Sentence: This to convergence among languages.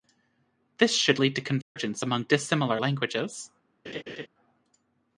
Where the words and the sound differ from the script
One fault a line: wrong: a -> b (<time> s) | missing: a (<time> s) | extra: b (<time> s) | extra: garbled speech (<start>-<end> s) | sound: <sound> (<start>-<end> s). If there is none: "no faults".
extra: should lead (0.9 s)
sound: dropout (1.6-1.8 s)
extra: dissimilar (2.2 s)
sound: laugh (3.8-4.3 s)